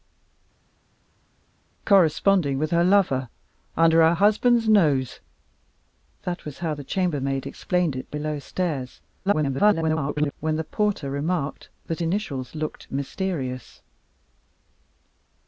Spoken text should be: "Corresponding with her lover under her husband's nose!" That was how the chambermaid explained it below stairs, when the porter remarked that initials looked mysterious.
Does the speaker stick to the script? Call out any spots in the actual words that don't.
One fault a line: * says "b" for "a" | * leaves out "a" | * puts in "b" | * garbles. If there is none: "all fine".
* garbles